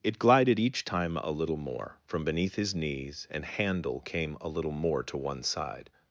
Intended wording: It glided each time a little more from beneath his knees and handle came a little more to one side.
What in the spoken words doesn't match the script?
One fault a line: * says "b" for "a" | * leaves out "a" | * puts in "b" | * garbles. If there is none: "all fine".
all fine